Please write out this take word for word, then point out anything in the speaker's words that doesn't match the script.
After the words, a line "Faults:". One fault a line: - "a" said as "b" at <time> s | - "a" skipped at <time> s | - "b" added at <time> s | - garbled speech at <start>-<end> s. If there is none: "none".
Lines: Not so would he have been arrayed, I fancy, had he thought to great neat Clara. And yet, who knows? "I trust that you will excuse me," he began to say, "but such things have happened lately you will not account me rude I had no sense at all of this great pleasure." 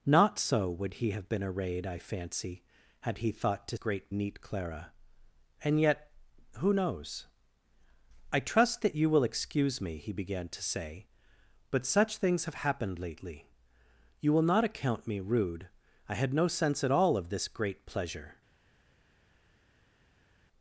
Not so would he have been arrayed, I fancy, had he thought to great neat Clara. And yet, who knows? "I trust that you will excuse me," he began to say, "but such things have happened lately you will not account me rude I had no sense at all of this great pleasure."
Faults:
none